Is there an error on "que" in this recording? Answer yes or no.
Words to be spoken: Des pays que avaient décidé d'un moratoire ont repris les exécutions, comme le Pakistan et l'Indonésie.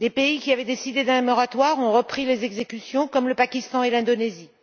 yes